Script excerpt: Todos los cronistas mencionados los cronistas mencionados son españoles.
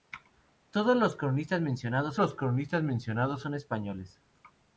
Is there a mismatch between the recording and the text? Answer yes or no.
no